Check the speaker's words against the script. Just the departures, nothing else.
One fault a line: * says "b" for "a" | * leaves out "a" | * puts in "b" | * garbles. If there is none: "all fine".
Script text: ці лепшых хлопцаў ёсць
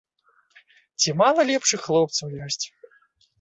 * puts in "мала"